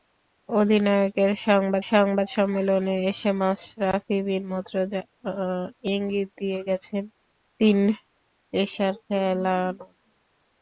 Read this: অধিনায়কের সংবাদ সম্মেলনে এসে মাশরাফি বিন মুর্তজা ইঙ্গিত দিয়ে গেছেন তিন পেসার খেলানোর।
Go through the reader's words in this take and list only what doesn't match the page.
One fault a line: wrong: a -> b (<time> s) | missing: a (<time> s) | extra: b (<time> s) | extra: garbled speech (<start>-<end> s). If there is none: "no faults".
extra: সংবাদ (1.9 s)